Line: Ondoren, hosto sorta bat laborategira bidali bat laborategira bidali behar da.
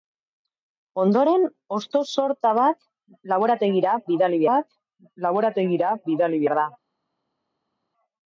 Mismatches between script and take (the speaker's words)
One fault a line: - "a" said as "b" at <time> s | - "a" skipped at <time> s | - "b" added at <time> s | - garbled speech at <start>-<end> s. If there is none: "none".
none